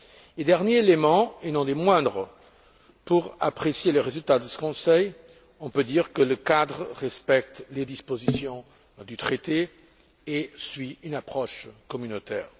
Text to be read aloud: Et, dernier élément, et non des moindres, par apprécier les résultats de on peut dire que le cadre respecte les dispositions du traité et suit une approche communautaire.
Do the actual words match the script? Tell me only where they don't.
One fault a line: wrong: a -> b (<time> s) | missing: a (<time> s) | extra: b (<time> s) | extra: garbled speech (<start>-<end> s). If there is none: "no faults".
wrong: par -> pour (3.0 s)
extra: ce Conseil (4.5 s)